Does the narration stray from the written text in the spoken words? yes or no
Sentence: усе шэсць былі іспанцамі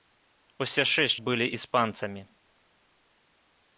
no